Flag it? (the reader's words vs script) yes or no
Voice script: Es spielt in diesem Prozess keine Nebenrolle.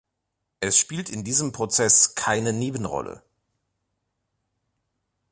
no